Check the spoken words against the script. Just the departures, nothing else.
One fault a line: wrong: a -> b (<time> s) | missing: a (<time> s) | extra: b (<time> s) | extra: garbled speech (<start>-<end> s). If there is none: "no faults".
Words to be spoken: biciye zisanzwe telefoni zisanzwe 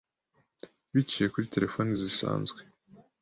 wrong: zisanzwe -> kuri (1.3 s)